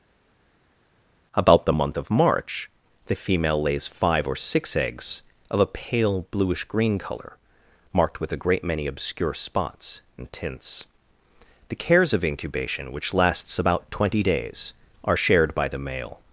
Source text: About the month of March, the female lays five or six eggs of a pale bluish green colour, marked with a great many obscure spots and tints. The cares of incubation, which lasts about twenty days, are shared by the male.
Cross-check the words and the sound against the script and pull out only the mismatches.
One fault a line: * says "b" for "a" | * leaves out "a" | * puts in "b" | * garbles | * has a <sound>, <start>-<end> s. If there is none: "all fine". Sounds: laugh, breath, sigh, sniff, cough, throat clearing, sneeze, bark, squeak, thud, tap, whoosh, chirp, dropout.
all fine